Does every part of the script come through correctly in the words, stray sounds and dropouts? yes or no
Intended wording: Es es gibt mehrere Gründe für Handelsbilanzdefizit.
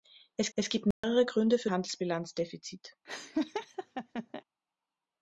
no